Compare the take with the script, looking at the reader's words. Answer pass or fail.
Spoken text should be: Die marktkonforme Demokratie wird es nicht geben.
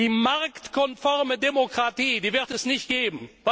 pass